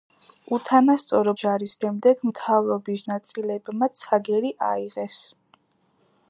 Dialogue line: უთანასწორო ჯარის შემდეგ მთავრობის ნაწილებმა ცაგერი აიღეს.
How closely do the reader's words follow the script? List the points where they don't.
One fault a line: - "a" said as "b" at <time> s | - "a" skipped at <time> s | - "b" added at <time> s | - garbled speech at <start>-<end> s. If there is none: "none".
none